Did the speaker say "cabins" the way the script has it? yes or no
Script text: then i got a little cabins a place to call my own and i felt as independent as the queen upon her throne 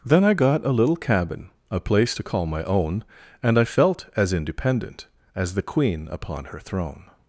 no